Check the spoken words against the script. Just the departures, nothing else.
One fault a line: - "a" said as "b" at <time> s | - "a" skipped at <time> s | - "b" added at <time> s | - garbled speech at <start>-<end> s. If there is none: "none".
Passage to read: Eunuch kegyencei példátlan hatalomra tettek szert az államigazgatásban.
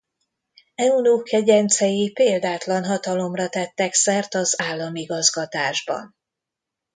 none